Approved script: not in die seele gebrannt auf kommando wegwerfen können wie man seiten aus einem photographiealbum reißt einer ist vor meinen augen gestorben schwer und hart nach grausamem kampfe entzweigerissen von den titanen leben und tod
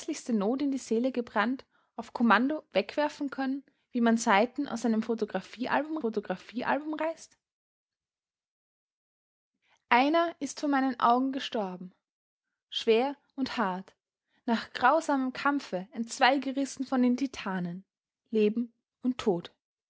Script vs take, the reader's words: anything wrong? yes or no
yes